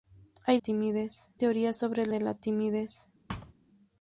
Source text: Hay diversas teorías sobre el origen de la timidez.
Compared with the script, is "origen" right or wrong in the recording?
wrong